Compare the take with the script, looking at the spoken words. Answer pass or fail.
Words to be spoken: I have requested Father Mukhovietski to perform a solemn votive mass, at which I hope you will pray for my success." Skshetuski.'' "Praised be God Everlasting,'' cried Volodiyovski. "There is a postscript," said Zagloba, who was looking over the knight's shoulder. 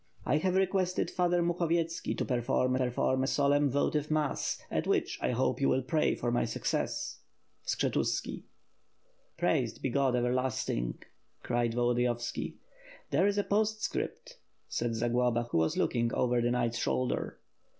fail